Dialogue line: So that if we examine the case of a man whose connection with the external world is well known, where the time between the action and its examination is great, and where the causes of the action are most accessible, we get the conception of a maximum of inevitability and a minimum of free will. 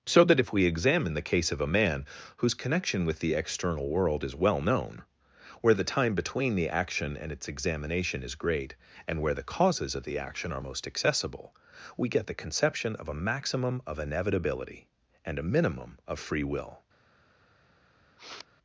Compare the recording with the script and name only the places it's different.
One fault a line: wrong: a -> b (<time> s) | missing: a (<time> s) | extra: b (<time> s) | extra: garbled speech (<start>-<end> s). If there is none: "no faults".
no faults